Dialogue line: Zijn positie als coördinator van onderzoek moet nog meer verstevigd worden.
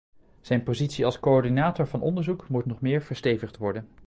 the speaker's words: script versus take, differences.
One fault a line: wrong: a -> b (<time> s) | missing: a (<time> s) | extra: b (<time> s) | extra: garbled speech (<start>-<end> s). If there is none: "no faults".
no faults